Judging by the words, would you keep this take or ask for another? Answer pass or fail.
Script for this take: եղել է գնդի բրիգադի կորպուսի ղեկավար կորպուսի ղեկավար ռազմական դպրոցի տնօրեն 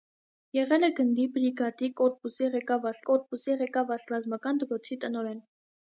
pass